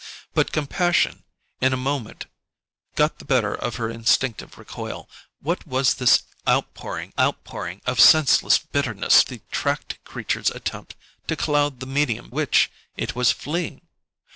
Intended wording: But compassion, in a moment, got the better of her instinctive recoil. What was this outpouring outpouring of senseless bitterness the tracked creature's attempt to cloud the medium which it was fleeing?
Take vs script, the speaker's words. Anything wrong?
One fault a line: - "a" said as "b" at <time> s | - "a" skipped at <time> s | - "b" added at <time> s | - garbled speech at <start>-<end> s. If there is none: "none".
none